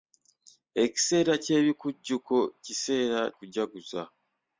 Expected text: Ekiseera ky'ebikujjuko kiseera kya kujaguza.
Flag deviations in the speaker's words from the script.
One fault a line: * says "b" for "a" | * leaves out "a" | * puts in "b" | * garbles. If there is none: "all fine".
* leaves out "kya"